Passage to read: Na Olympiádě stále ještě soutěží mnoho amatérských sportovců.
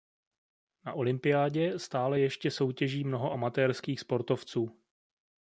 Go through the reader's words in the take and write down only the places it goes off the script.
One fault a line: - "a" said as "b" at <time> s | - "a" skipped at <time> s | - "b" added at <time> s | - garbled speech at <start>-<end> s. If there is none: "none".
none